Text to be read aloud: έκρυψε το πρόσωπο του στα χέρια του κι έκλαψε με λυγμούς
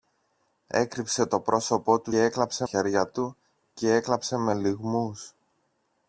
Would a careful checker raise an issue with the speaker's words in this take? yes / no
yes